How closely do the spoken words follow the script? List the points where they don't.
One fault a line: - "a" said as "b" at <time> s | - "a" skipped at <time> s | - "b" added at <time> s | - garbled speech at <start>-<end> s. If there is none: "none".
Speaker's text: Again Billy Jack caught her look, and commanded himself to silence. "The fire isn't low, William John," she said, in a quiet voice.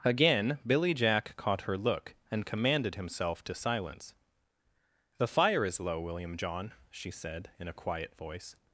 - "isn't" said as "is" at 5.7 s